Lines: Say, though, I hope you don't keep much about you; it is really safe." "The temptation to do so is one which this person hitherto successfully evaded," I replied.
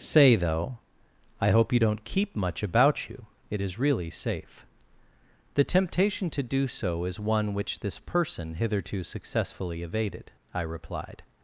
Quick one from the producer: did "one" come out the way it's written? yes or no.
yes